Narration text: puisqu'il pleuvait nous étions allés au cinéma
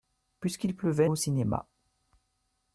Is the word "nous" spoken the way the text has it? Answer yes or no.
no